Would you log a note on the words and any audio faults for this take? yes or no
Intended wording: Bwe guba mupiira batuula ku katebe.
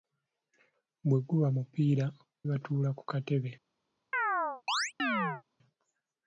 yes